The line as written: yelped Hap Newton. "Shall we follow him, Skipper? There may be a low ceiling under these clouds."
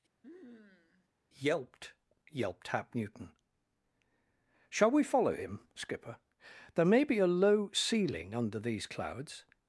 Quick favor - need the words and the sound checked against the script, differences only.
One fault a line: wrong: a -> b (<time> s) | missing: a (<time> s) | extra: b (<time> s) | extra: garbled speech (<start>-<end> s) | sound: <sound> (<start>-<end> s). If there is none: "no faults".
sound: sniff (0.2-1.1 s)
extra: yelped (2.3 s)